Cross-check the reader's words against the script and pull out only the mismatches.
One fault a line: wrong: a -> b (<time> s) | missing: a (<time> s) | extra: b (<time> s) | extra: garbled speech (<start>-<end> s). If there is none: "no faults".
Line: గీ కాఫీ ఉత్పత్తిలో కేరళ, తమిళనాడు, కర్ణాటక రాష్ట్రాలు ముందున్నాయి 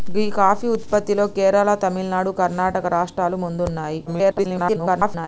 extra: garbled speech (4.1-5.3 s)